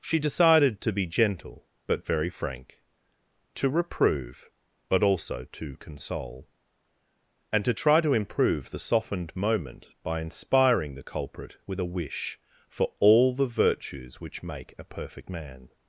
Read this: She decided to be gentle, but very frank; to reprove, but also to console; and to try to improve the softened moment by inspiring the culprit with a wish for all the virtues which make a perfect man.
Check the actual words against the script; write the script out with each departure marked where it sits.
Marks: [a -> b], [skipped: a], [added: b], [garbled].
She decided to be gentle, but very frank; to reprove, but also to console; and to try to improve the softened moment by inspiring the culprit with a wish for all the virtues which make a perfect man.